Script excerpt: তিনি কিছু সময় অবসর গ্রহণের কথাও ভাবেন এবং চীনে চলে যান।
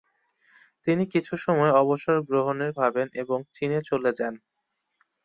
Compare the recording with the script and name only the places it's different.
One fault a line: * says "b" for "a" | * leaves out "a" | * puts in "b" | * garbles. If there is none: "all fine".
* leaves out "কথাও"